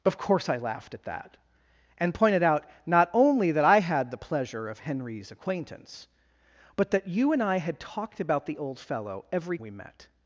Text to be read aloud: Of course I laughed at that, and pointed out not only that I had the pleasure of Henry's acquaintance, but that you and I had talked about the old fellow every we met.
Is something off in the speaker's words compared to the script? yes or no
no